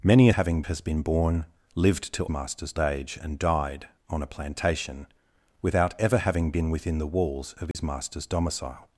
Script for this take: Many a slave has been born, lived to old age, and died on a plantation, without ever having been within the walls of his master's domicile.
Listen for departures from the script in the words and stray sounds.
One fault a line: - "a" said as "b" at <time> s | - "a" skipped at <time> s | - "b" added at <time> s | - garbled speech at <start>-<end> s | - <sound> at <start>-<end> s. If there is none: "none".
- "slave" said as "having" at 0.3 s
- "old" said as "master's" at 2.3 s
- dropout at 7.7-7.7 s